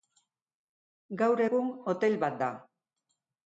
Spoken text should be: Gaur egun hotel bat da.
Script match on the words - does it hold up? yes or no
yes